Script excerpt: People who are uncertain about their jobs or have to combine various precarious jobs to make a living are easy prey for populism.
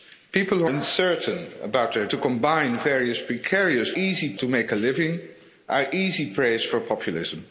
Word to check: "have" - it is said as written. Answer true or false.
false